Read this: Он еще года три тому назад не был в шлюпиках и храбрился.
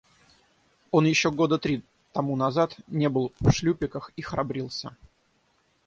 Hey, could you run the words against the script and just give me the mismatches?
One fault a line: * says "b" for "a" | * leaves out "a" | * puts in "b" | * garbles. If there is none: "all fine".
all fine